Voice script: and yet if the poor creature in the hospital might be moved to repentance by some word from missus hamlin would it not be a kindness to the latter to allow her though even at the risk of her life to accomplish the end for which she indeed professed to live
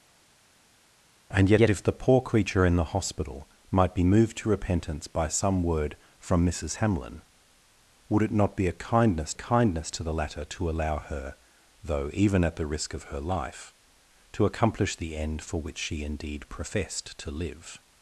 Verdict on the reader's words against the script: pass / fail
fail